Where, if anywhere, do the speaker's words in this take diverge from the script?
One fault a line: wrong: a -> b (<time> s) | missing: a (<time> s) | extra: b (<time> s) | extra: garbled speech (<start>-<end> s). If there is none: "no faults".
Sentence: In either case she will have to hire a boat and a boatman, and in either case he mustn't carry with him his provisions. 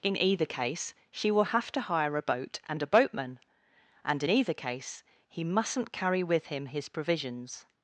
no faults